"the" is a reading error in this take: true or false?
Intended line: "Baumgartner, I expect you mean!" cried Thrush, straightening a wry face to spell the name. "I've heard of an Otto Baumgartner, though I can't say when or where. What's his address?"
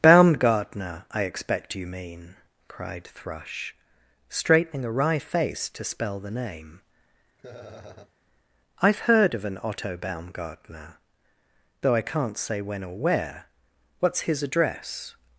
false